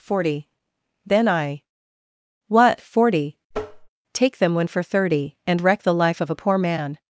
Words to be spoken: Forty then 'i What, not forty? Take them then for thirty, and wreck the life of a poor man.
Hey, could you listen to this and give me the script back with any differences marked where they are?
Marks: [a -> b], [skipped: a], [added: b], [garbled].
Forty then 'i What, [skipped: not] forty? Take them [then -> when] for thirty, and wreck the life of a poor man.